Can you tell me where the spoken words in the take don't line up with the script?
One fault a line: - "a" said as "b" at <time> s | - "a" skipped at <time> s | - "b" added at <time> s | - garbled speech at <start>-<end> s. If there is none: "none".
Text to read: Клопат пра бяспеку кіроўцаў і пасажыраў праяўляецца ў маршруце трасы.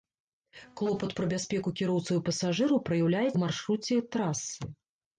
none